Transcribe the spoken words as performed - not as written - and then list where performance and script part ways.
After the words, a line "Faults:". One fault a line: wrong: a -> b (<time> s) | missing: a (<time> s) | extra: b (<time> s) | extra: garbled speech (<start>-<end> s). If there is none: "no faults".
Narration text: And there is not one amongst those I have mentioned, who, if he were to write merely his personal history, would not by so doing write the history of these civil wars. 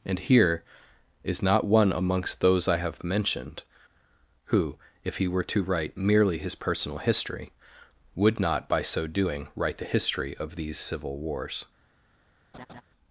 And here is not one amongst those I have mentioned, who, if he were to write merely his personal history, would not by so doing write the history of these civil wars.
Faults:
wrong: there -> here (0.2 s)